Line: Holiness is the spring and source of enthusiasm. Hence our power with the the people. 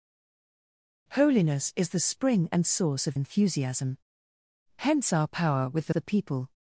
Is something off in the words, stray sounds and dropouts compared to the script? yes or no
no